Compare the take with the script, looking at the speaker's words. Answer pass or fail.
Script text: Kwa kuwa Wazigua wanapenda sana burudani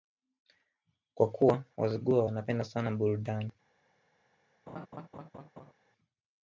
pass